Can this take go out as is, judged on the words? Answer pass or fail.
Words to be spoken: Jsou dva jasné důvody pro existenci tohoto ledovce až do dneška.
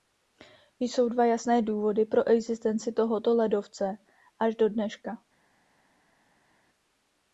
pass